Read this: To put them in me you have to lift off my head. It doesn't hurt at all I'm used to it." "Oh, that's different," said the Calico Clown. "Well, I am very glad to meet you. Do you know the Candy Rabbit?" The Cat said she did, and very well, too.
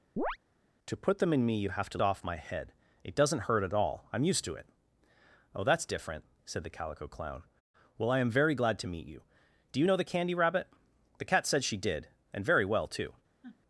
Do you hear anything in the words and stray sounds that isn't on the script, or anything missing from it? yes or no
yes